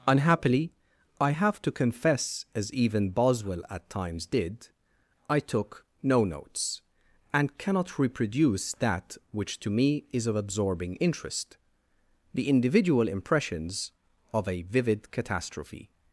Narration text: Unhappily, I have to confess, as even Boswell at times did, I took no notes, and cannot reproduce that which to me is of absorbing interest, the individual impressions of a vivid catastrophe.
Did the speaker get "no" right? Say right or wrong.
right